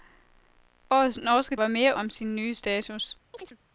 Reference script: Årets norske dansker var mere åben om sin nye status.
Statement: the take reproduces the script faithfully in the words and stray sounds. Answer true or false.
false